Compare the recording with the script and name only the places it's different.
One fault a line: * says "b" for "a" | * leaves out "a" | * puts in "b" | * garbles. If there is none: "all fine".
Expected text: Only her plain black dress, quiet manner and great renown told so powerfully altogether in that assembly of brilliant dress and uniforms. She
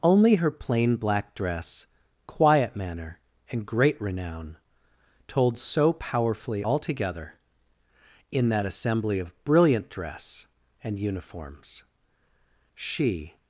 all fine